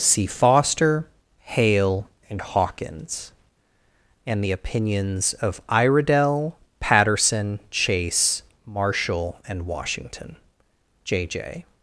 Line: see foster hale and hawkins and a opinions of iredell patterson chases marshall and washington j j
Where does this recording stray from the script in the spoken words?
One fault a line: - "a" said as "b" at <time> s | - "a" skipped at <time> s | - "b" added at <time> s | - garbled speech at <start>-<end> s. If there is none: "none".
- "a" said as "the" at 4.4 s
- "chases" said as "chase" at 7.7 s